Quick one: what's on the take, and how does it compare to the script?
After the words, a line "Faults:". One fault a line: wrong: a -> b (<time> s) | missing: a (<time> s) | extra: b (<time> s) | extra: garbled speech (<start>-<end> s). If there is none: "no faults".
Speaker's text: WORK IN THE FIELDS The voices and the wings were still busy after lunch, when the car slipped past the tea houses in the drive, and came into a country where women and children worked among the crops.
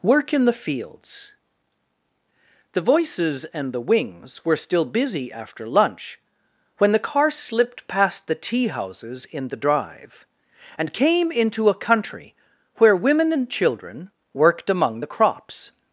WORK IN THE FIELDS The voices and the wings were still busy after lunch, when the car slipped past the tea houses in the drive, and came into a country where women and children worked among the crops.
Faults:
no faults